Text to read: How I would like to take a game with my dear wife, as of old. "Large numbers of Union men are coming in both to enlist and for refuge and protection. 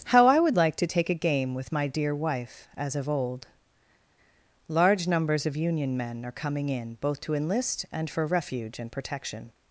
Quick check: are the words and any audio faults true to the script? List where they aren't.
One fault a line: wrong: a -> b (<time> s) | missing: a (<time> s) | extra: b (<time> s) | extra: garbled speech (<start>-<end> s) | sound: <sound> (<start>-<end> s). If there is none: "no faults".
no faults